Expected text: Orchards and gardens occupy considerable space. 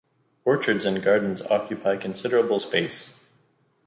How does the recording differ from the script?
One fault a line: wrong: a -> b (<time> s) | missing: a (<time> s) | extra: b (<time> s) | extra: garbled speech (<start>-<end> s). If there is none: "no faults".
no faults